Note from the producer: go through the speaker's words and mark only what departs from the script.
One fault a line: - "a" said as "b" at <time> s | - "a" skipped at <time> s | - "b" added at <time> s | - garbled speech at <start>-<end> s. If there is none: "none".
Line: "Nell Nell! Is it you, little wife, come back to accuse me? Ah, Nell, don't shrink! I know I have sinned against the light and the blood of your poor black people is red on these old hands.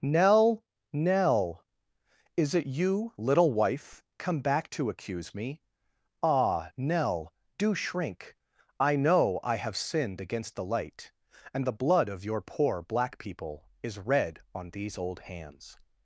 - "don't" said as "do" at 7.6 s